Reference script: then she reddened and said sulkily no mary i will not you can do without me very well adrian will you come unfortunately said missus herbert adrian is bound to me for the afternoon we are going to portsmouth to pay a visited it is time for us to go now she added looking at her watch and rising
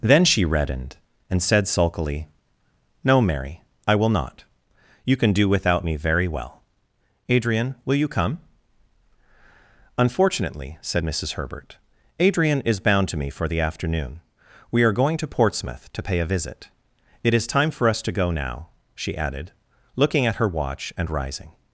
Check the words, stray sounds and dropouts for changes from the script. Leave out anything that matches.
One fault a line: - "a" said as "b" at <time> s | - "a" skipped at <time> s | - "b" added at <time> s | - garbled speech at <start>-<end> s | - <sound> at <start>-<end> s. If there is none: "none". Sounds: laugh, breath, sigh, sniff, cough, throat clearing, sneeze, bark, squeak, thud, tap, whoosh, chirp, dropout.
- "visited" said as "visit" at 16.3 s